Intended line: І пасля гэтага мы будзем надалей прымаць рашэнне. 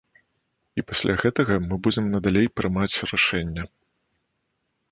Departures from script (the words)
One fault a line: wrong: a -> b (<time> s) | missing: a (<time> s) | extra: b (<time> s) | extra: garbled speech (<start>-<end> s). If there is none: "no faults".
no faults